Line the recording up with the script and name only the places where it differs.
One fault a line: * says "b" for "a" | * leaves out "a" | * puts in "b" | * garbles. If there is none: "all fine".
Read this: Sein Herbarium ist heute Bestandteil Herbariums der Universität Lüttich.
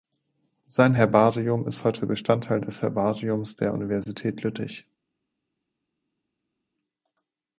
* puts in "des"